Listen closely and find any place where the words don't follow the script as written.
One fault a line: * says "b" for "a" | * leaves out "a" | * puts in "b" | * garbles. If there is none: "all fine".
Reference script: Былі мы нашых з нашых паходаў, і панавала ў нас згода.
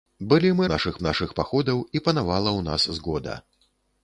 all fine